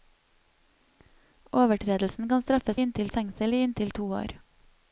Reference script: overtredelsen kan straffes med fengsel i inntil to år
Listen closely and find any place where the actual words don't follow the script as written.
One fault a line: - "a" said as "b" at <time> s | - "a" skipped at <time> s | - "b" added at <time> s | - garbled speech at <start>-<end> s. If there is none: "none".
- "med" said as "inntil" at 2.8 s